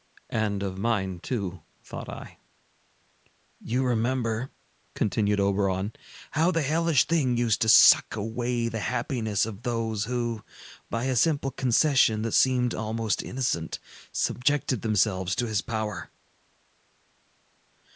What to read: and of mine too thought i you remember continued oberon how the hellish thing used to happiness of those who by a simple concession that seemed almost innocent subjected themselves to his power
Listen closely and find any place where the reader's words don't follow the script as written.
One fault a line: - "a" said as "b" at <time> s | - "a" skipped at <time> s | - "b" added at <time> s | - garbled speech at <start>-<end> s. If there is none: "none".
- "suck away the" added at 7.7 s